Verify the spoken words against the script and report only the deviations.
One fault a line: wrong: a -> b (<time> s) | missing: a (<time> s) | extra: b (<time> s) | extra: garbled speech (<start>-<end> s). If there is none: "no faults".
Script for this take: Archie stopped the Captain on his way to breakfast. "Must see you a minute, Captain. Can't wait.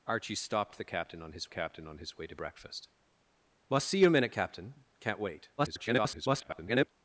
extra: Captain on his (1.5 s)
extra: garbled speech (5.6-6.9 s)